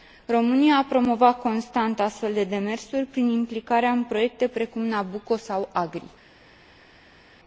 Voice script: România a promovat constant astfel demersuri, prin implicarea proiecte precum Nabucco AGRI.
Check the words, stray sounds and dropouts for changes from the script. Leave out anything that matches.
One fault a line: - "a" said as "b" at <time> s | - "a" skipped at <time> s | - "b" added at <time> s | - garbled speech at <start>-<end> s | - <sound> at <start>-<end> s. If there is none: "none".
- "de" added at 2.3 s
- "în" added at 3.9 s
- "sau" added at 5.4 s